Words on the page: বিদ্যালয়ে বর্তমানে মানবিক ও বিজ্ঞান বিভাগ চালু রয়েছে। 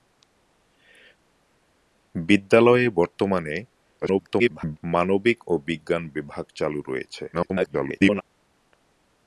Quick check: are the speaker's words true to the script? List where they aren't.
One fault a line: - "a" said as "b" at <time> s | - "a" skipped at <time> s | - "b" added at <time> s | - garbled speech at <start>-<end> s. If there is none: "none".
- garbled speech at 4.0-4.8 s
- garbled speech at 7.3-8.2 s